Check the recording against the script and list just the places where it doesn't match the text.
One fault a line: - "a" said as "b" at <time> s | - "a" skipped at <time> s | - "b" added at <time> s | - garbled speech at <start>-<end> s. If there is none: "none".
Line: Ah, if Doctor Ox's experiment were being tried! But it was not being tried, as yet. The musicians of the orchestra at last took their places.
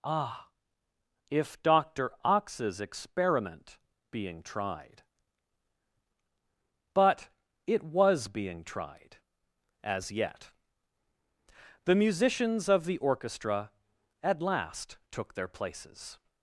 - "were" skipped at 3.8 s
- "not" skipped at 8.3 s